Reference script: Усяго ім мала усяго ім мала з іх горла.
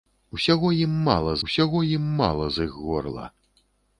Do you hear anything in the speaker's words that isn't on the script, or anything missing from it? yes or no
no